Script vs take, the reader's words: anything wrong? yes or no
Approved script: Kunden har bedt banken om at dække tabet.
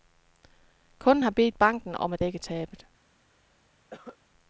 no